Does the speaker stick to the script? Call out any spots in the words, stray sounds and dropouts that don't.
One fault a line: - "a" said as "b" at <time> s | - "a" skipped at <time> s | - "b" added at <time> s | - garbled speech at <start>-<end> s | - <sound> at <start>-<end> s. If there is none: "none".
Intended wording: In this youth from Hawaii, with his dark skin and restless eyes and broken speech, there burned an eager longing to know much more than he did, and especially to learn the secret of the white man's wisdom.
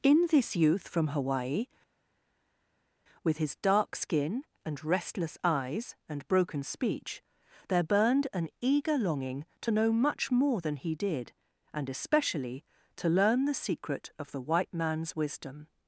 none